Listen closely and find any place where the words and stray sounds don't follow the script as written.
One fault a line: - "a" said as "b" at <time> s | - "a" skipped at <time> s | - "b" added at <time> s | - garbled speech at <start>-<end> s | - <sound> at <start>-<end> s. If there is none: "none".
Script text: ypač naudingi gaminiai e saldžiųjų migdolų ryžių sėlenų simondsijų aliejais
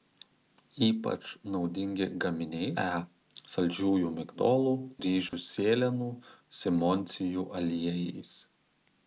- dropout at 5.3-5.3 s